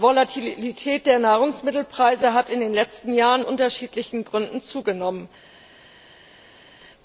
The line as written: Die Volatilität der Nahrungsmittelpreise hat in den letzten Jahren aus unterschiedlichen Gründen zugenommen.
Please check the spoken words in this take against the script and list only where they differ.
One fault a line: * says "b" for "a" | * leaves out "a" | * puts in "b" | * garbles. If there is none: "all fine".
* leaves out "aus"